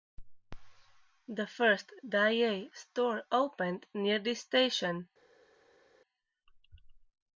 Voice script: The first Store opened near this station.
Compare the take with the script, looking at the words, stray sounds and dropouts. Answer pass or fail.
fail